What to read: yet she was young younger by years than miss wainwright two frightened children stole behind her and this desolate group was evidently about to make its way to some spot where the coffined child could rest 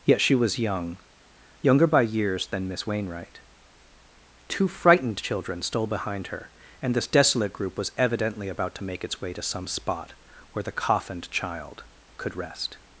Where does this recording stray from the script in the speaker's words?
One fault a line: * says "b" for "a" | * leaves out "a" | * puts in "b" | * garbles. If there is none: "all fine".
all fine